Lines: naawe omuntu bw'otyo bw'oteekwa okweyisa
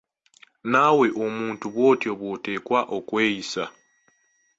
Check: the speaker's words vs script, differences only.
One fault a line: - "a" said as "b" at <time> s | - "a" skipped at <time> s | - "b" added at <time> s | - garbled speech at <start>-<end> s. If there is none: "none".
none